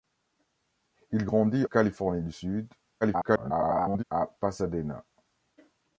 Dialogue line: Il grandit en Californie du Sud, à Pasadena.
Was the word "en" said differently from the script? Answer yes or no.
yes